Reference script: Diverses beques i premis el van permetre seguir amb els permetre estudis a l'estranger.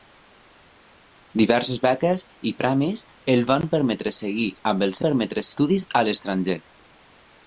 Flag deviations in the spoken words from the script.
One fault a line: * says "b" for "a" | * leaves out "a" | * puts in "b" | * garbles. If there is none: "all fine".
all fine